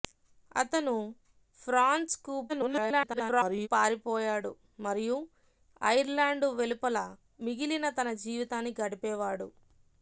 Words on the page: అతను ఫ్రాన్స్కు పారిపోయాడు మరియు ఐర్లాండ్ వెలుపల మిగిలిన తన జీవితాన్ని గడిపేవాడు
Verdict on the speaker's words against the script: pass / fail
fail